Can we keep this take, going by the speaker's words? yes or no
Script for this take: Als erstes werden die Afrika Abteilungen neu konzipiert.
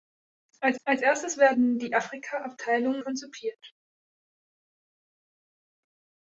no